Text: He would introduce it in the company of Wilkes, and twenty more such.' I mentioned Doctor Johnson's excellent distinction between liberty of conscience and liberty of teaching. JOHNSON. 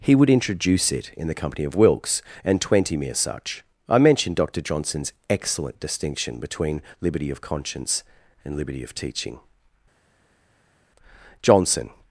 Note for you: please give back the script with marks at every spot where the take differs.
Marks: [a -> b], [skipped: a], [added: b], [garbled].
He would introduce it in the company of Wilkes, and twenty [more -> mere] such.' I mentioned Doctor Johnson's excellent distinction between liberty of conscience and liberty of teaching. JOHNSON.